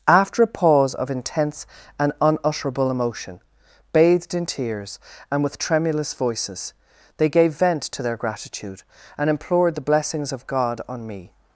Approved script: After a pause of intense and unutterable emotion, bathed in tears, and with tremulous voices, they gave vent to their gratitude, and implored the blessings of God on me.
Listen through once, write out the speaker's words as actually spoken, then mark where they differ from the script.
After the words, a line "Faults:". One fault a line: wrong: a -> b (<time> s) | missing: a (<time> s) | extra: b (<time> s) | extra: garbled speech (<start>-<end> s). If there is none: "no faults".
After a pause of intense and unutterable emotion, bathed in tears, and with tremulous voices, they gave vent to their gratitude, and implored the blessings of God on me.
Faults:
no faults